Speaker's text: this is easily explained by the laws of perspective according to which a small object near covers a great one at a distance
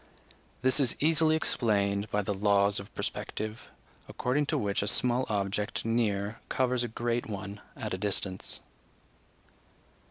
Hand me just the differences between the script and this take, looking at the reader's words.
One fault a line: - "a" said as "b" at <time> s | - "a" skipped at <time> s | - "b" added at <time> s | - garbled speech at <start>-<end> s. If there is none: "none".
none